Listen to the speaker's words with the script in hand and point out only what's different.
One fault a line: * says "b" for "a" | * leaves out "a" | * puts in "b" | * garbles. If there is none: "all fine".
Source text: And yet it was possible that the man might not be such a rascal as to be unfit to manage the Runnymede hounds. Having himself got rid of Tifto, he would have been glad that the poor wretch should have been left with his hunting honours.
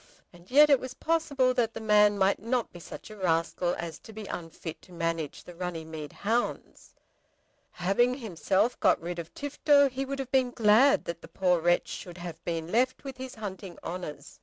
all fine